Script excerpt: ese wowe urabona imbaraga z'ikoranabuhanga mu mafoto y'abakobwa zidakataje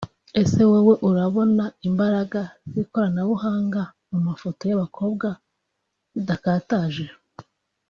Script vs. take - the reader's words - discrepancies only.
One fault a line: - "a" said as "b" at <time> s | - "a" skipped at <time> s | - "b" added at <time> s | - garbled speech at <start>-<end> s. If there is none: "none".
none